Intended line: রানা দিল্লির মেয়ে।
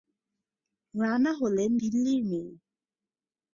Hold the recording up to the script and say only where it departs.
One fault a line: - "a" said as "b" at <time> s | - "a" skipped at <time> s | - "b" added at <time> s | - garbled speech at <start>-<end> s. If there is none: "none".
- "হলেন" added at 1.3 s